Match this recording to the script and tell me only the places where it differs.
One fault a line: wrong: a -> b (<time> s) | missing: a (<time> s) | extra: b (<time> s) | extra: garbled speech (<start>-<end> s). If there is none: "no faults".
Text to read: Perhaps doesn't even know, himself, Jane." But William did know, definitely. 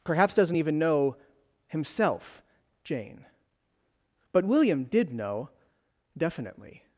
no faults